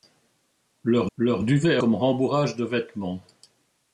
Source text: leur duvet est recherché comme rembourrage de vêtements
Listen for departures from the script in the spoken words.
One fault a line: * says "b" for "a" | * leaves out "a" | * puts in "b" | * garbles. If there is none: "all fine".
* puts in "leur"
* leaves out "recherché"